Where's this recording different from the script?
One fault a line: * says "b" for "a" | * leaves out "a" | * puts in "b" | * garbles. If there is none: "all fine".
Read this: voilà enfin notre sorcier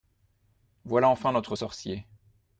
all fine